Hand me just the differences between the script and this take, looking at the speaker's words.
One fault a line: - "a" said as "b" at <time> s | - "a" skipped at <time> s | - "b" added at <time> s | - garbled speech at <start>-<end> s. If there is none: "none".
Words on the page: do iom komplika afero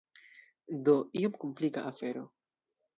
none